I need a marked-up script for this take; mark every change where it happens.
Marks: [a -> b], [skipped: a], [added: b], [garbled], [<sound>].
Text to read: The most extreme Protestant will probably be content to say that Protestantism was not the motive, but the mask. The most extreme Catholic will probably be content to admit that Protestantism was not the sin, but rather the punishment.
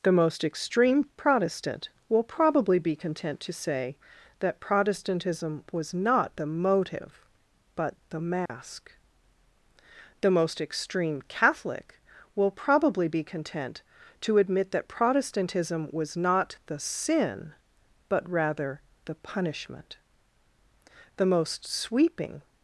The most extreme Protestant will probably be content to say that Protestantism was not the motive, but the mask. [dropout] The most extreme Catholic will probably be content to admit that Protestantism was not the sin, but rather the punishment. [added: The most sweeping]